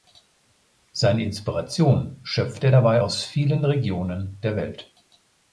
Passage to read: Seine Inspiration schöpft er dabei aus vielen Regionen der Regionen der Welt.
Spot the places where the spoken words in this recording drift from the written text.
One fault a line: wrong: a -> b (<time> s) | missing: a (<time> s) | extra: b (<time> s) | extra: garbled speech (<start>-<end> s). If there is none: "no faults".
missing: Regionen der (4.5 s)